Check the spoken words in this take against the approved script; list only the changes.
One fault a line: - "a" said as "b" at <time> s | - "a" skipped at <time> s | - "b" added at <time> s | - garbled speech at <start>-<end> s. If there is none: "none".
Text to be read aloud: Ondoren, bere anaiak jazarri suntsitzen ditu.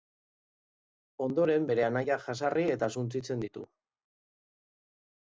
- "eta" added at 2.8 s